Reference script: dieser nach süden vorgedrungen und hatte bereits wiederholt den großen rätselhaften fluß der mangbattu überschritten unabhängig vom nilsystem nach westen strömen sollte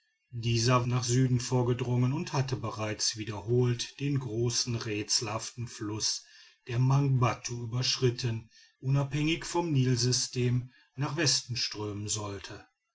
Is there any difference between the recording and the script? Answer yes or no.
no